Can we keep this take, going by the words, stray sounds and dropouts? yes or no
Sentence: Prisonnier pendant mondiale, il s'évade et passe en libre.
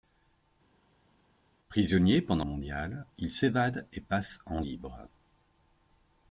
yes